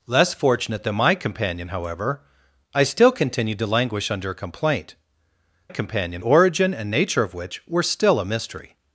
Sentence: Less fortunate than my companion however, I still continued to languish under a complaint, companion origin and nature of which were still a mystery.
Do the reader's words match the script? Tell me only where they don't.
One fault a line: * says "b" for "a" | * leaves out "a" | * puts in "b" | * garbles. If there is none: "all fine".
all fine